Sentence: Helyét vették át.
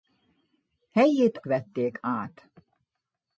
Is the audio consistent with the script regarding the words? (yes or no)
yes